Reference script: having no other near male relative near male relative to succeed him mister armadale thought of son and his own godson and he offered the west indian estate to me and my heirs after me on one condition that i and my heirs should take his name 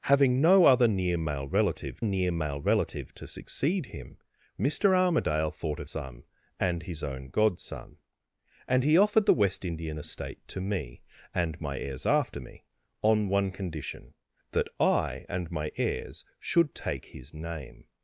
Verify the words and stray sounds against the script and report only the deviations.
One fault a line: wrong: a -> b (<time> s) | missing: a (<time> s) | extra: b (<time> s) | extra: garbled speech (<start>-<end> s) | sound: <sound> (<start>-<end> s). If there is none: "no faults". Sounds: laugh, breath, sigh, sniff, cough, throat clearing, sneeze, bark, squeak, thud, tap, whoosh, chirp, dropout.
no faults